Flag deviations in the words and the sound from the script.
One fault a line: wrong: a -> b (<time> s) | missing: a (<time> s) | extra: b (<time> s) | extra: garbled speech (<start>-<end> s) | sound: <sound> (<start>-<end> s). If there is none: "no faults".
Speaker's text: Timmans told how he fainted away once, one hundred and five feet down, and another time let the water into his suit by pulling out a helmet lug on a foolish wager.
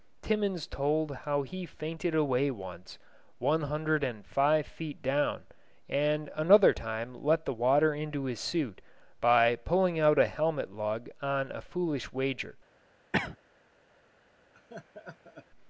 sound: cough (13.1-13.4 s)
sound: laugh (14.5-15.5 s)